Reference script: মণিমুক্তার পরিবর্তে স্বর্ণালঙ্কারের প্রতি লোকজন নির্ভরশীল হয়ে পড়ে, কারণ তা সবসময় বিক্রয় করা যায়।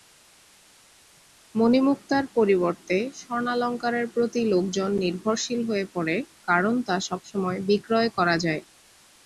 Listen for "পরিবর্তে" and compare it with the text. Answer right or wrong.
right